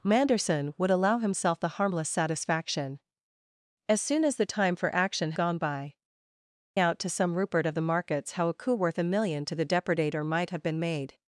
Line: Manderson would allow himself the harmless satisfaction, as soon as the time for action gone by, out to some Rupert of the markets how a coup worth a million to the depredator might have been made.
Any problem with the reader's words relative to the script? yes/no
no